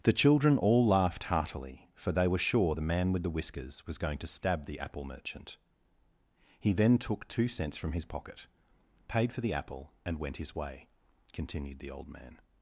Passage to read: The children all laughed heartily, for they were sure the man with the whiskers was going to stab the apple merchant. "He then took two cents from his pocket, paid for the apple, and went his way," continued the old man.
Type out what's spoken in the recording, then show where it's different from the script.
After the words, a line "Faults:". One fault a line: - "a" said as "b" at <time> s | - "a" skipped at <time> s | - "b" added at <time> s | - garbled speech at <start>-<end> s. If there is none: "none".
The children all laughed heartily, for they were sure the man with the whiskers was going to stab the apple merchant. "He then took two cents from his pocket, paid for the apple, and went his way," continued the old man.
Faults:
none